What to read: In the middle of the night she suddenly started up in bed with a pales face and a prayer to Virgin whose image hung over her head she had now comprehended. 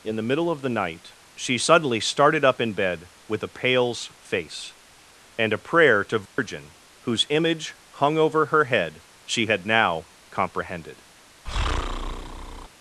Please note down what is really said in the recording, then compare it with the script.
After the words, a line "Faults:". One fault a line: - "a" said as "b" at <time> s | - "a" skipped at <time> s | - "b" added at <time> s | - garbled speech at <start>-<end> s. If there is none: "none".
In the middle of the night she suddenly started up in bed with a pales face and a prayer to Virgin whose image hung over her head she had now comprehended.
Faults:
none